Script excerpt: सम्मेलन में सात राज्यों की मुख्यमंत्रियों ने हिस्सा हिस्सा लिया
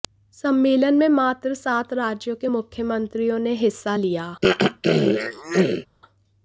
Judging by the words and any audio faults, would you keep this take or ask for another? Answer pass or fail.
fail